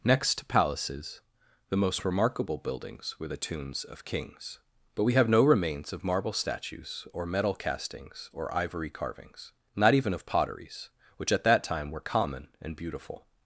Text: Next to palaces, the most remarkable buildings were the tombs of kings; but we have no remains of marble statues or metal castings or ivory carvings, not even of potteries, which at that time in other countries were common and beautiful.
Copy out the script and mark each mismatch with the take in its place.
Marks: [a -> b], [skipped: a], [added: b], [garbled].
Next to palaces, the most remarkable buildings were the tombs of kings; but we have no remains of marble statues or metal castings or ivory carvings, not even of potteries, which at that time [skipped: in other countries] were common and beautiful.